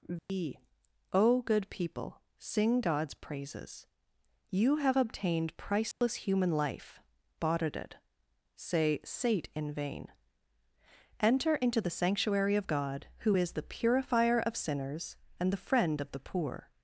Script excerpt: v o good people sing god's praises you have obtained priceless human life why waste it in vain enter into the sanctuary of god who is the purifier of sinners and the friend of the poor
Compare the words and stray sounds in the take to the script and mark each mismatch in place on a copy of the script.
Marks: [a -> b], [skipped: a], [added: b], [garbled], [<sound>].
v [dropout] o good people sing god's praises you have obtained priceless [dropout] human life [why waste it -> bought it say sate] in vain enter into the sanctuary of god who is the purifier of sinners and the friend of the poor